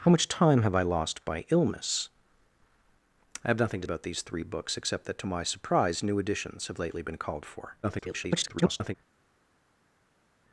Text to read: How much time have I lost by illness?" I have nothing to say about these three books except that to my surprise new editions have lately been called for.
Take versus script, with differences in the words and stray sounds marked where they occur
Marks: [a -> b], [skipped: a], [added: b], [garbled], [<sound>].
How much time have I lost by illness?" I have nothing to [skipped: say] about these three books except that to my surprise new editions have lately been called for. [garbled]